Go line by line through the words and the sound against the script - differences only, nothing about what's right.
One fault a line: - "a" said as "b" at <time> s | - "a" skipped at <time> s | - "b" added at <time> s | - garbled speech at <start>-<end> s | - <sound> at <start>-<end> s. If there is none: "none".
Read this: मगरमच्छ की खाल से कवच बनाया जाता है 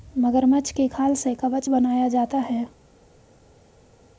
none